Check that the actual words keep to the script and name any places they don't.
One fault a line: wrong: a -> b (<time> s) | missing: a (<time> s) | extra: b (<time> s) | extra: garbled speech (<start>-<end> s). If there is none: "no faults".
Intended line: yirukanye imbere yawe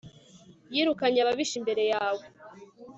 extra: ababisha (1.2 s)